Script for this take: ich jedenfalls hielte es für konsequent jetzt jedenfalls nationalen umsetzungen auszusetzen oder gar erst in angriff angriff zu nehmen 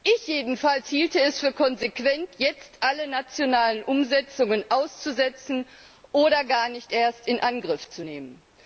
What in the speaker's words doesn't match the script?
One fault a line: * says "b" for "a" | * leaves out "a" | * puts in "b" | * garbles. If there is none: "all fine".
* says "alle" for "jedenfalls"
* puts in "nicht"
* leaves out "angriff"